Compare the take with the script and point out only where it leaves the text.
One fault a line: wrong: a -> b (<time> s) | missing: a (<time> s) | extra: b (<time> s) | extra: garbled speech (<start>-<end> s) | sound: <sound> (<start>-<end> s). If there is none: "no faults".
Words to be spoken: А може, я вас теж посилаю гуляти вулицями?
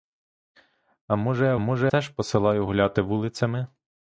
wrong: вас -> може (1.6 s)